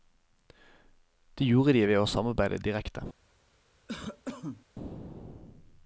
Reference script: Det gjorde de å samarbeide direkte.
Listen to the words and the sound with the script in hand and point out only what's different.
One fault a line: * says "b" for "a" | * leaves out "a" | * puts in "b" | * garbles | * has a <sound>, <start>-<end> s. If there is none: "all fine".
* puts in "ved"
* has a cough, 3.9-4.7 s